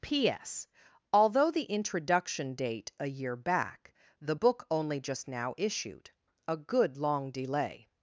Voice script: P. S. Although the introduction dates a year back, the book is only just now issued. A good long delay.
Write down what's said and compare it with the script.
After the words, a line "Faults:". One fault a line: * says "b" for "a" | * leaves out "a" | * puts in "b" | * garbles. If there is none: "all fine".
P. S. Although the introduction date a year back, the book only just now issued. A good long delay.
Faults:
* says "date" for "dates"
* leaves out "is"